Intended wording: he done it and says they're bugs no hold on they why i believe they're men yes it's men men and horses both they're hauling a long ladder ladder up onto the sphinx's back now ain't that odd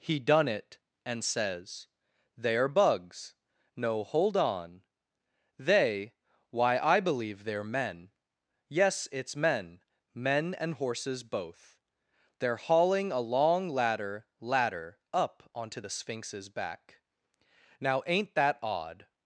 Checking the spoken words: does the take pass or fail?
pass